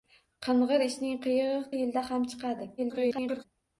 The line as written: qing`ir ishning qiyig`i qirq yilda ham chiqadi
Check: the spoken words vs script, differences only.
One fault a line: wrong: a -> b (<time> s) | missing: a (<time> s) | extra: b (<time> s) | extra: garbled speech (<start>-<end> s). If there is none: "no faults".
missing: qirq (1.6 s)
extra: garbled speech (2.8-3.4 s)